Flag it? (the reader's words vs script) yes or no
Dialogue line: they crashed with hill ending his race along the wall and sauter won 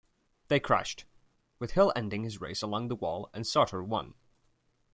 no